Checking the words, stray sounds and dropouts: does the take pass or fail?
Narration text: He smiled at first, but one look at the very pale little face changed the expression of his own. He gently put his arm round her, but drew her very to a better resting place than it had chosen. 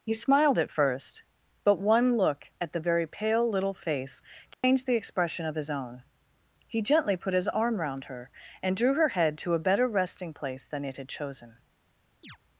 fail